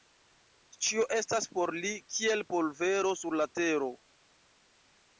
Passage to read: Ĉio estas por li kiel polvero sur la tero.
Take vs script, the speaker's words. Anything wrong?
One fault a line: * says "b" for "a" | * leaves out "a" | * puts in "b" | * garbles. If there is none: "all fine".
all fine